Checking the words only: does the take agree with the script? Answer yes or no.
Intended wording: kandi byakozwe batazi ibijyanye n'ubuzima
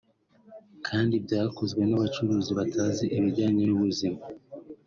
no